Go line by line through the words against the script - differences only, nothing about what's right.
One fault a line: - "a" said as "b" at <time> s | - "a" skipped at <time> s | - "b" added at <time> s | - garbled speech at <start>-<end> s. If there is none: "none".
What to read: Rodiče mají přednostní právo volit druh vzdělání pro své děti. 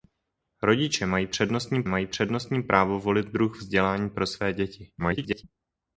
- "mají přednostní" added at 1.8 s
- garbled speech at 5.0-5.4 s